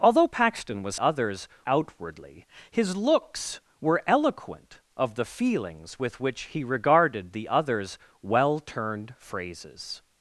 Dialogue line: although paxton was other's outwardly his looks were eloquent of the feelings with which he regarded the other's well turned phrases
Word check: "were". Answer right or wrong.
right